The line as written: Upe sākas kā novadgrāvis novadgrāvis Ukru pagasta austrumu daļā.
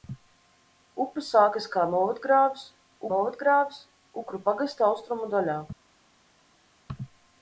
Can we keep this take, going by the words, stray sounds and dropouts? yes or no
yes